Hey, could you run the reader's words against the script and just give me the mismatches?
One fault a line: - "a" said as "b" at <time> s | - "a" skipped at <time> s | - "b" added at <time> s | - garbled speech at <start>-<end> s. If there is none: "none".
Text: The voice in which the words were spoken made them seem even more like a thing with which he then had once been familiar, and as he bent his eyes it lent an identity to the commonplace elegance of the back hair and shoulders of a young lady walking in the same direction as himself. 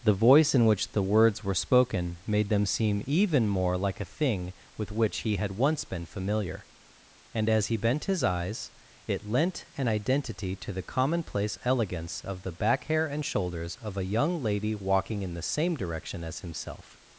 - "then" skipped at 5.4 s